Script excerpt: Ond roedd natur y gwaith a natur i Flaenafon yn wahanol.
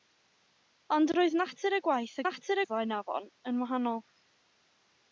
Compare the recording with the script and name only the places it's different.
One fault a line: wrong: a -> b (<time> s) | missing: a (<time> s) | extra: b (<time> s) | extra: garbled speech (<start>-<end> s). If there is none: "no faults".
no faults